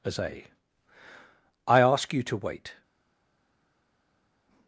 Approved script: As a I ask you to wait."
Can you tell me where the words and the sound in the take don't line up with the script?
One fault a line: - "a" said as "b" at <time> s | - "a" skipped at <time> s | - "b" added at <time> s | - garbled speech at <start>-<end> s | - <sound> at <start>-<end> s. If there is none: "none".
none